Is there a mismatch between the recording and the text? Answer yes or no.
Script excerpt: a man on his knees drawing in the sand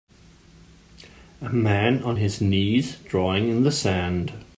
no